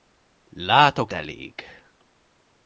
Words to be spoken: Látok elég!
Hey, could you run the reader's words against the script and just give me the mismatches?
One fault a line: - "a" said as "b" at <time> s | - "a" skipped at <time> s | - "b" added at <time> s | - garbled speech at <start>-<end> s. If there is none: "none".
none